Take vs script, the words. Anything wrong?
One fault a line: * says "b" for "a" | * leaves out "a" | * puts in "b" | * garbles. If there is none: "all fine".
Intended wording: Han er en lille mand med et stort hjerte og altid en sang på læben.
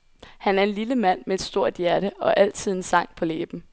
all fine